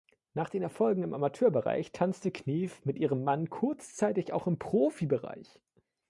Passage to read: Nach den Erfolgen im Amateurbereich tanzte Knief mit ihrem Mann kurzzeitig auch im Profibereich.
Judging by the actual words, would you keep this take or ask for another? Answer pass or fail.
pass